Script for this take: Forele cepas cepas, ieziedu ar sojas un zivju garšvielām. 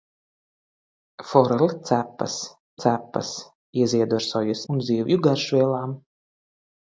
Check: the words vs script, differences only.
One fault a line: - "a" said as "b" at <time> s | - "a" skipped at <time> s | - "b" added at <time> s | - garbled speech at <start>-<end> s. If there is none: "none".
none